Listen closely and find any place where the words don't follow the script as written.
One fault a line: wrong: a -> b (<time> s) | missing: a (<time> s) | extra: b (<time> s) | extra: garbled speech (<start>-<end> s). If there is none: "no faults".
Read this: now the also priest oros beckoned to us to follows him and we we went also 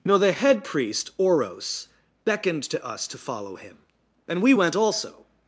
wrong: also -> head (0.3 s)
wrong: follows -> follow (3.2 s)
missing: we (4.5 s)